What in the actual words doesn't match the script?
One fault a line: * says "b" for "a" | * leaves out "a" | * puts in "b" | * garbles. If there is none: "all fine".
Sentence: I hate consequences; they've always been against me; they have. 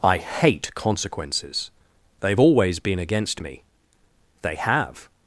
all fine